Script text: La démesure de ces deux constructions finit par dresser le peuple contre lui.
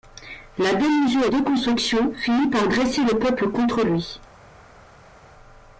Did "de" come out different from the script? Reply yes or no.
yes